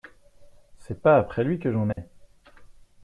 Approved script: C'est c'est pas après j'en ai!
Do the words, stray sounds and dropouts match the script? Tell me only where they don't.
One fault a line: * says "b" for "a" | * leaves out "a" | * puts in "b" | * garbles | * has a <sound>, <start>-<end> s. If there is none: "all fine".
* leaves out "c'est"
* puts in "lui que"
* has a dropout, 1.9-2.0 s